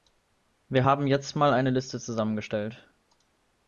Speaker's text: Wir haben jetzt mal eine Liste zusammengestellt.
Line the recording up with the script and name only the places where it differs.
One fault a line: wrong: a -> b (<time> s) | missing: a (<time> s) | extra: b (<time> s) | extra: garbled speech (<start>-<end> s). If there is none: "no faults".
no faults